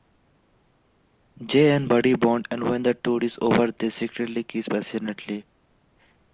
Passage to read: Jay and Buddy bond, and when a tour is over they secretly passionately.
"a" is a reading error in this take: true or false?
true